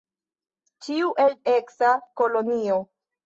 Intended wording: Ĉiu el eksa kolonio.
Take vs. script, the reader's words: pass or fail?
pass